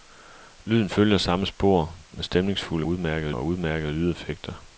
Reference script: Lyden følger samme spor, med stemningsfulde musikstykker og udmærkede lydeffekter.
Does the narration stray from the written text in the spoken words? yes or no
yes